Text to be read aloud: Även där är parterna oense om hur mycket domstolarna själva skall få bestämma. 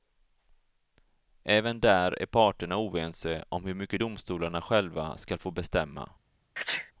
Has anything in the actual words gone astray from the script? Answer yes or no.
no